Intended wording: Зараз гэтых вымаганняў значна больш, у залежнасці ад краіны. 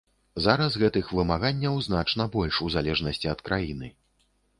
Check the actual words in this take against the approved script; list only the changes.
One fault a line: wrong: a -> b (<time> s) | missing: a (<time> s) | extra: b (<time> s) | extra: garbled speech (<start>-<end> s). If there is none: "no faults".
no faults